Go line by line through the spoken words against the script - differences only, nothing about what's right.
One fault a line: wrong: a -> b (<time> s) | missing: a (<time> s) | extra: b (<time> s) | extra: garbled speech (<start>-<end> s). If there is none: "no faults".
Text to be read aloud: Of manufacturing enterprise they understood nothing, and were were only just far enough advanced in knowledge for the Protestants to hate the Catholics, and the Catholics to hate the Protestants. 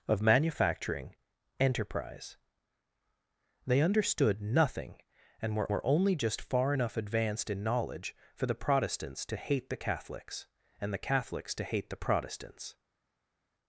no faults